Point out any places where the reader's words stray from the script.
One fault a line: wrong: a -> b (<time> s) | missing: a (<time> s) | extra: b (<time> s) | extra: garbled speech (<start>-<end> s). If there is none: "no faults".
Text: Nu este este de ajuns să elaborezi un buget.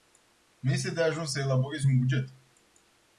missing: este (0.9 s)